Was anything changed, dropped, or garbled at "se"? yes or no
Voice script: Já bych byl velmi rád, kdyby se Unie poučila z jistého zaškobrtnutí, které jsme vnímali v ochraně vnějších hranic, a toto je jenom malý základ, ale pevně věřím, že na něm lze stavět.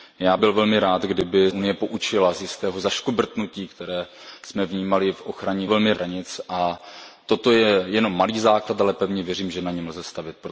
yes